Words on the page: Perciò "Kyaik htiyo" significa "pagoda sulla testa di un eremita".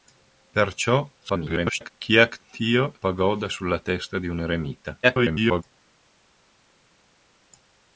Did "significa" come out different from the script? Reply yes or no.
yes